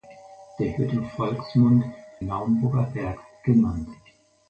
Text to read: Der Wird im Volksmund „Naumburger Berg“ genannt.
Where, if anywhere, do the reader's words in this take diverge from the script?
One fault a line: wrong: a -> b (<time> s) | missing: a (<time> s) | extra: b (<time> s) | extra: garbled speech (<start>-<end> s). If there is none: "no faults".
no faults